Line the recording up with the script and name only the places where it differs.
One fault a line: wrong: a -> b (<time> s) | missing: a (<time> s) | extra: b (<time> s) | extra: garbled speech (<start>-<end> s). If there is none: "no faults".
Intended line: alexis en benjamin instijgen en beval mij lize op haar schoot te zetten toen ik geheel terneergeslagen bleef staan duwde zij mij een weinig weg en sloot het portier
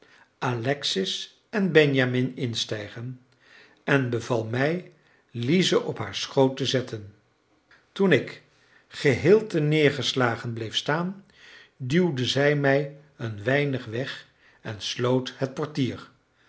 no faults